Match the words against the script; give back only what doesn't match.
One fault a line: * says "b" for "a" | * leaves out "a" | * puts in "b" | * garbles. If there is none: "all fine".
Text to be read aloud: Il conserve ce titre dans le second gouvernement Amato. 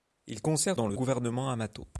* leaves out "ce titre"
* leaves out "second"